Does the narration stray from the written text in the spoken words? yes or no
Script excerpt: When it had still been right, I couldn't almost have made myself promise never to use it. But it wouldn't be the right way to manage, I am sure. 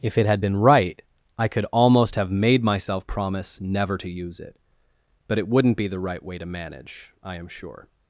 yes